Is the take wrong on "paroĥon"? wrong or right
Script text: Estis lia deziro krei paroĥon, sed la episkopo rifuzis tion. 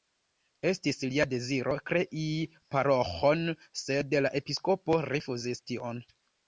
right